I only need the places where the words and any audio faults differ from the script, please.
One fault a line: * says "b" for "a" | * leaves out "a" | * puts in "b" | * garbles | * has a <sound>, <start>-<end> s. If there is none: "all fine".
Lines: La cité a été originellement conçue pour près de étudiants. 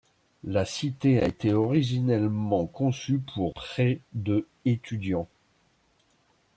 all fine